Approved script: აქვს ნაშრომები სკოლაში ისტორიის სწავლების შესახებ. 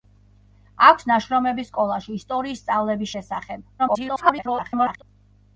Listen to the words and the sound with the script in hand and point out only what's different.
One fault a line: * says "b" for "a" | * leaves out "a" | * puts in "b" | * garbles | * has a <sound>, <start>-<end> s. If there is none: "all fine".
* garbles